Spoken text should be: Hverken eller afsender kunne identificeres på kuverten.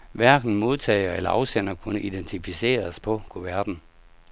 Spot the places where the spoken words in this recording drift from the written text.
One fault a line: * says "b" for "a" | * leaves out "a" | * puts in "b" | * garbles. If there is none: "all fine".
* puts in "modtager"